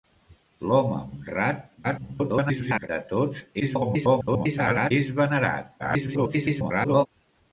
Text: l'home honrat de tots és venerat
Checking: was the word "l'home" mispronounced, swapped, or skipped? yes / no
no